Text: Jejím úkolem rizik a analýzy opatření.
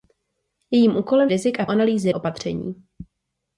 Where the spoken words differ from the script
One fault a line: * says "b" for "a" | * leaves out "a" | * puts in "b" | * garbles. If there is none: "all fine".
all fine